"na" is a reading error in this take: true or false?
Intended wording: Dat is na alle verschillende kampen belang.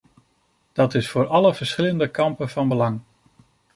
true